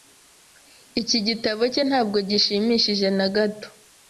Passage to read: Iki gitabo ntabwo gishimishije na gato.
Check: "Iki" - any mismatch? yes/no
no